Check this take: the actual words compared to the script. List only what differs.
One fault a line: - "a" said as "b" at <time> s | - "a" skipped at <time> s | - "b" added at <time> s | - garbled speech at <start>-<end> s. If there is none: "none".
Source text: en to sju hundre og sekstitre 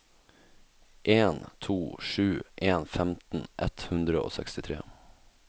- "en femten ett" added at 2.5 s